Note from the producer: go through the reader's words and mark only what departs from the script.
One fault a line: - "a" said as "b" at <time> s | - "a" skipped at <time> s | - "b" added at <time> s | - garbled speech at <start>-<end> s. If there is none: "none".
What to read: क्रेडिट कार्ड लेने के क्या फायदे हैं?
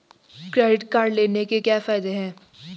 none